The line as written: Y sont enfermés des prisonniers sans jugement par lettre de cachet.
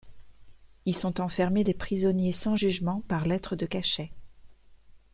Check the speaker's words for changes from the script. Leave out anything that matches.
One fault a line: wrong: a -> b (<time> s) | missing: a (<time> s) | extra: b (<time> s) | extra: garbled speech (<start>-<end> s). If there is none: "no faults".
no faults